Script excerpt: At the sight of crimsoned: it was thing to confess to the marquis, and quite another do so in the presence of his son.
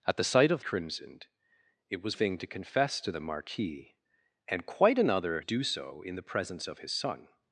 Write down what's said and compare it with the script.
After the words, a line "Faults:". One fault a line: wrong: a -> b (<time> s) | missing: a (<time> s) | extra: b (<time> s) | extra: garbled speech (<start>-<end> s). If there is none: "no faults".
At the sight of crimsoned: it was thing to confess to the marquis, and quite another do so in the presence of his son.
Faults:
no faults